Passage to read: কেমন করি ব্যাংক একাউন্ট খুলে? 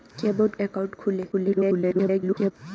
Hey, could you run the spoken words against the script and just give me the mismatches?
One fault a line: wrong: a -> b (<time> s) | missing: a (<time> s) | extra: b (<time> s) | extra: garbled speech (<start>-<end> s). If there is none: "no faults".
missing: করি ব্যাংক (0.5 s)
extra: garbled speech (1.3-2.5 s)